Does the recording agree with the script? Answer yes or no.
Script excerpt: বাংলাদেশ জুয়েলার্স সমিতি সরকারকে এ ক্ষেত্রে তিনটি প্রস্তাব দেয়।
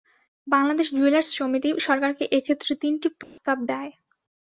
yes